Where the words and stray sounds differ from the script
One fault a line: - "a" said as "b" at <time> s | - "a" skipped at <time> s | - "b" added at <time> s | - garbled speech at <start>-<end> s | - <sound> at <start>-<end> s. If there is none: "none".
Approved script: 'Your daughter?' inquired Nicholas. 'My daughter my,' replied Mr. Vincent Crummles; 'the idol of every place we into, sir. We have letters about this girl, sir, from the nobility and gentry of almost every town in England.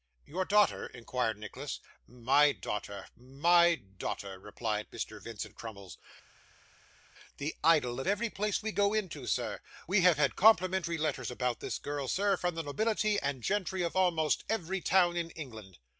- "daughter" added at 3.8 s
- "go" added at 8.7 s
- "had complimentary" added at 10.2 s